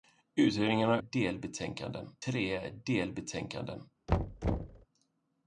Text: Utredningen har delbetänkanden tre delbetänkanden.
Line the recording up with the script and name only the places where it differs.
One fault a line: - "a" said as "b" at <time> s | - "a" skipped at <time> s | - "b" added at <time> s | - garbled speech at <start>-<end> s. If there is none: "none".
none